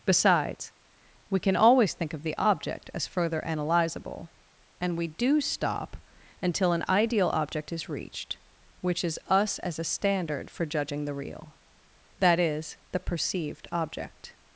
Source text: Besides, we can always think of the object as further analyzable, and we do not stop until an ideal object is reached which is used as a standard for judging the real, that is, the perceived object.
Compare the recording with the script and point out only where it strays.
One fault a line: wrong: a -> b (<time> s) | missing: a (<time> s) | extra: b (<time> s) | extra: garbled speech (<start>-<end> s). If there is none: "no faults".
missing: not (5.4 s)
wrong: used -> us (9.3 s)